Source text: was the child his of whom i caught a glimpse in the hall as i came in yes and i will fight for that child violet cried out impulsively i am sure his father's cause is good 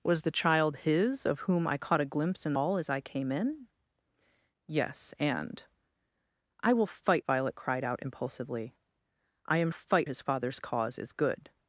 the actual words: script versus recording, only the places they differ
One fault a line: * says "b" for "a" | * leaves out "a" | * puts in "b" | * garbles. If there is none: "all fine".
* leaves out "the"
* leaves out "for that child"
* says "fight" for "sure"